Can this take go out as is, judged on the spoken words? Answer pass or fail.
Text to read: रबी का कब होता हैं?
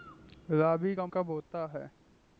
pass